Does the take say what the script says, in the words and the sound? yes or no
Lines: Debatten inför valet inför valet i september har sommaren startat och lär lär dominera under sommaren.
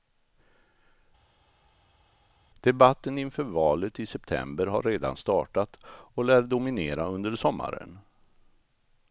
no